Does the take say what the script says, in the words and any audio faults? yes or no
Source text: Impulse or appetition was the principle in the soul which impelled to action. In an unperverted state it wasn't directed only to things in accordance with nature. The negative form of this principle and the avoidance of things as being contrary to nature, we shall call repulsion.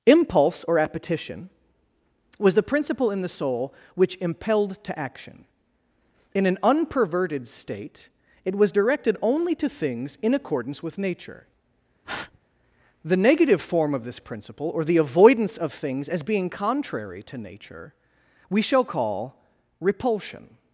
no